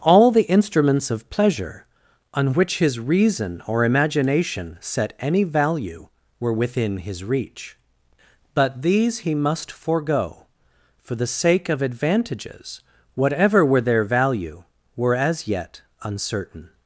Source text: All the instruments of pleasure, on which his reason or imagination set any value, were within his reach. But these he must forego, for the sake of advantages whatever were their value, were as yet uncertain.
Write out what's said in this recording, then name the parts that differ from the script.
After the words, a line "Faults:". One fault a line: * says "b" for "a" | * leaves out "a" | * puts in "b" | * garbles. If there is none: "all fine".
All the instruments of pleasure, on which his reason or imagination set any value, were within his reach. But these he must forego, for the sake of advantages whatever were their value, were as yet uncertain.
Faults:
all fine